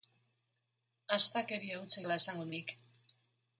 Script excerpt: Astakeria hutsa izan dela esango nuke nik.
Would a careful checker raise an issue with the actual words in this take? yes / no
yes